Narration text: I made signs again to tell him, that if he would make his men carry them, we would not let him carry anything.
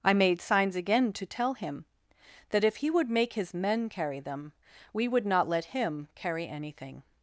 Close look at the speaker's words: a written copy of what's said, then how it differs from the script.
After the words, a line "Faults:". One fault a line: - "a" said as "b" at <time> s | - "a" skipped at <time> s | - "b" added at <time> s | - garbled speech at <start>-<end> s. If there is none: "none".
I made signs again to tell him, that if he would make his men carry them, we would not let him carry anything.
Faults:
none